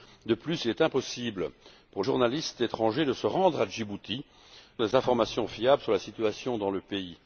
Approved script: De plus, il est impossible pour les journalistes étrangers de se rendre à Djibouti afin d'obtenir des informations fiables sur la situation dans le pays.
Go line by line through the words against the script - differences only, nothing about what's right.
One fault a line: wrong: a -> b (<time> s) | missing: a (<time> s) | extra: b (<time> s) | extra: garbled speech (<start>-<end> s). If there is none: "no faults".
missing: les (2.0 s)
missing: afin d'obtenir (4.2 s)